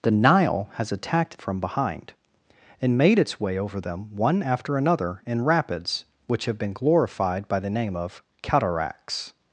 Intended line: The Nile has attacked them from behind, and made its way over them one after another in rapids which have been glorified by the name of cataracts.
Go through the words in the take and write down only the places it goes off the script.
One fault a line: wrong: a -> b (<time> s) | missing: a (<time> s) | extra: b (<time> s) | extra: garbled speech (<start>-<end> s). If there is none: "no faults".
missing: them (1.4 s)